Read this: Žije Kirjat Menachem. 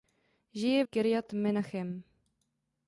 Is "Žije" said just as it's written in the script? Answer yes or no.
yes